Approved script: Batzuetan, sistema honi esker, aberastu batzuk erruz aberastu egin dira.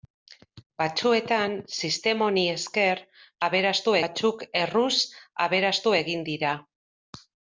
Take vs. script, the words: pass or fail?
pass